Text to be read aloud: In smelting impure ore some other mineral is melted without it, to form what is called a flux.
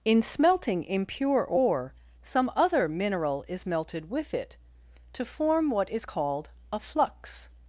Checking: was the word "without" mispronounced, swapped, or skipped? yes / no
yes